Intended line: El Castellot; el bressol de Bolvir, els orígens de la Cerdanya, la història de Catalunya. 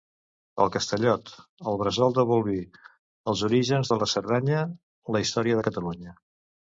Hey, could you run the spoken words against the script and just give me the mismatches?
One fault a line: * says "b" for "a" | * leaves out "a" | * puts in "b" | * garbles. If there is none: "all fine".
all fine